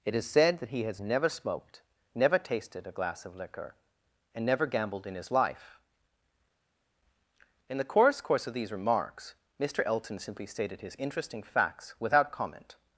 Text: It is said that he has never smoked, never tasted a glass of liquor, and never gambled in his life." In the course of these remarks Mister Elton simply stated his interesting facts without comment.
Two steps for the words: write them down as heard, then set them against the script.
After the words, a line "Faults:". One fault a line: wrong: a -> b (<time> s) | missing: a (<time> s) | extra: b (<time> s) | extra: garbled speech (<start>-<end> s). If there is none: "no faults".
It is said that he has never smoked, never tasted a glass of liquor, and never gambled in his life." In the course course of these remarks Mister Elton simply stated his interesting facts without comment.
Faults:
extra: course (8.2 s)